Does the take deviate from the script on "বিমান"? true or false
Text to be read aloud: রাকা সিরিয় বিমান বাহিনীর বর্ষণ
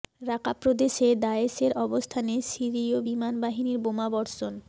false